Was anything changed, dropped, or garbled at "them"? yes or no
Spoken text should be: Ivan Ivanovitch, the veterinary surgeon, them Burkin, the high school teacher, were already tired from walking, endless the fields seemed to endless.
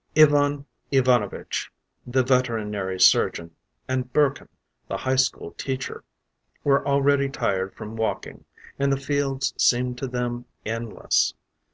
yes